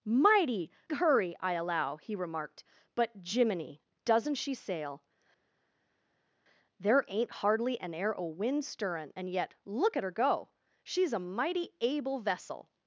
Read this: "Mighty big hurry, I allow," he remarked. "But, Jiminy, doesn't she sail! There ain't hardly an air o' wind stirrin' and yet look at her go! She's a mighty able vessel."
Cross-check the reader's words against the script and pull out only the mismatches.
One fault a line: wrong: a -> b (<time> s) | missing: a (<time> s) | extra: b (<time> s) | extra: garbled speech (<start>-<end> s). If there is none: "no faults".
missing: big (0.7 s)